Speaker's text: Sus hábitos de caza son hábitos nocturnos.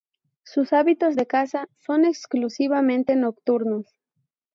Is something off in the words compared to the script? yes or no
yes